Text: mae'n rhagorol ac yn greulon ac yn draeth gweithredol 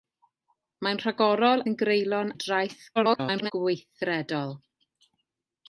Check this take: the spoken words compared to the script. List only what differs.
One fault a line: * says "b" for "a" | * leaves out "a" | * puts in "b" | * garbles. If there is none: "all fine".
* leaves out "ac"
* leaves out "ac"
* garbles